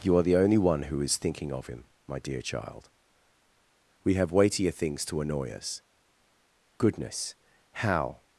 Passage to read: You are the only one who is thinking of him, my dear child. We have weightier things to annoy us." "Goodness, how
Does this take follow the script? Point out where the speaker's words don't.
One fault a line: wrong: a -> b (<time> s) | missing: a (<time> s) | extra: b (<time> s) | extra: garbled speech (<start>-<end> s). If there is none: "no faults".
no faults